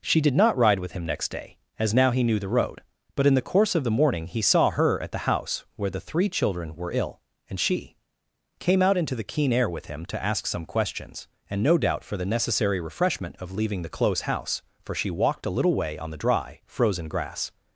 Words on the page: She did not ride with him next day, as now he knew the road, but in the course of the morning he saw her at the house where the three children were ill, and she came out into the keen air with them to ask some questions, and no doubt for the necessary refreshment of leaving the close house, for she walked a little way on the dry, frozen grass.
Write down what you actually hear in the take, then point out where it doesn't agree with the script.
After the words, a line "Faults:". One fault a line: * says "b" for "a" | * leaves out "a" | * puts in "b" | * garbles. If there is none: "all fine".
She did not ride with him next day, as now he knew the road, but in the course of the morning he saw her at the house where the three children were ill, and she came out into the keen air with him to ask some questions, and no doubt for the necessary refreshment of leaving the close house, for she walked a little way on the dry, frozen grass.
Faults:
* says "him" for "them"